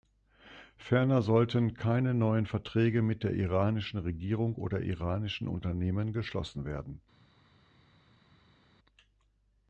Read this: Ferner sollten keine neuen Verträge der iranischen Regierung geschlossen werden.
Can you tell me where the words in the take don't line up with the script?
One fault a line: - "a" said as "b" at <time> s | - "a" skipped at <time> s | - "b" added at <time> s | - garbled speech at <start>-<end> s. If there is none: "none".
- "mit" added at 3.0 s
- "oder iranischen Unternehmen" added at 4.5 s